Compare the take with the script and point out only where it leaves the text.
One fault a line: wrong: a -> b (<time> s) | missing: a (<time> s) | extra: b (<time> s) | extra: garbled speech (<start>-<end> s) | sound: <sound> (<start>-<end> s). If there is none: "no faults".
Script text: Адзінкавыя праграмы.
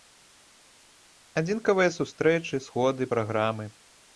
extra: сустрэчы сходы (2.0 s)